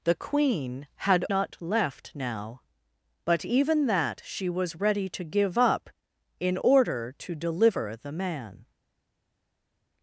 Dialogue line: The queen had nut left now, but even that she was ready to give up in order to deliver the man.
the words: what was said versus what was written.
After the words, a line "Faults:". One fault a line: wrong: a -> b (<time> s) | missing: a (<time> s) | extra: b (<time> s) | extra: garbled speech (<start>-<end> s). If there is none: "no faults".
The queen had nut left now, but even that she was ready to give up in order to deliver the man.
Faults:
no faults